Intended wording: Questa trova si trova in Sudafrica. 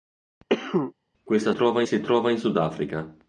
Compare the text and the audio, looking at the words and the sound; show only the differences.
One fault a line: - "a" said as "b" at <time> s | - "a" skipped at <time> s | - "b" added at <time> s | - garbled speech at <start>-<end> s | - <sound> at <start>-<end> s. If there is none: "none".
- cough at 0.5-0.9 s